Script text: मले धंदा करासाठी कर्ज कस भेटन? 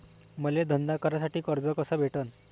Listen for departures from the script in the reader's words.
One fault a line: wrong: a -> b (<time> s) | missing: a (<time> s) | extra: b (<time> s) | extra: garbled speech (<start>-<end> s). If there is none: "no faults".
no faults